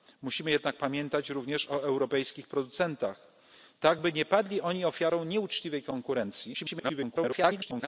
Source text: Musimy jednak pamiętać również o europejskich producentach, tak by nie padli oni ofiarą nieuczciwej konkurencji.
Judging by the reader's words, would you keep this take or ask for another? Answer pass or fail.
fail